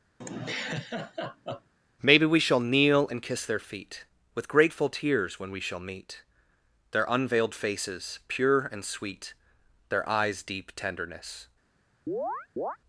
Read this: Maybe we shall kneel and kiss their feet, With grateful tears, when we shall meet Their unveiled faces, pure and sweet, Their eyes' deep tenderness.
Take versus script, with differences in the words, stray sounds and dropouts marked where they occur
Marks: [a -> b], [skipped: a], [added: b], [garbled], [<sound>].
[laugh] Maybe we shall kneel and kiss their feet, With grateful tears, when we shall meet Their unveiled faces, pure and sweet, Their eyes' deep tenderness. [chirp]